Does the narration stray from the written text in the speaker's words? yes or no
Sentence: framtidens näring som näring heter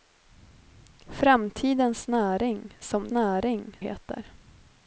no